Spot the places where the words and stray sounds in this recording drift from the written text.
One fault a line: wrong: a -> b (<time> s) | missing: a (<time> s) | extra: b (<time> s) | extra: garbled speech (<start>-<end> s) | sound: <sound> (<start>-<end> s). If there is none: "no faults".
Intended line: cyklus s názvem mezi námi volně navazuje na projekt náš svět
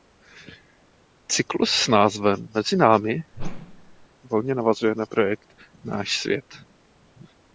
sound: whoosh (3.3-4.1 s)